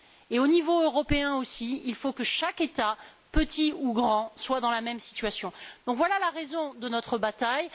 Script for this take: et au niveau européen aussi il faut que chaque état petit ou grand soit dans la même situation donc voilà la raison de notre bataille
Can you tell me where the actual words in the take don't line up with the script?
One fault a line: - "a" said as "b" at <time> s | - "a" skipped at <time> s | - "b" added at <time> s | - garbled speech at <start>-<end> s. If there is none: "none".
none